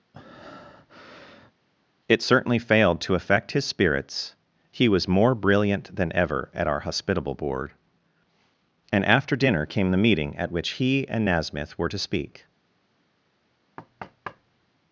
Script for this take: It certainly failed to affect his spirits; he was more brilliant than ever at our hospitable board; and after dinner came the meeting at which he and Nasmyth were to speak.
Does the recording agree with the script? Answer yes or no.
yes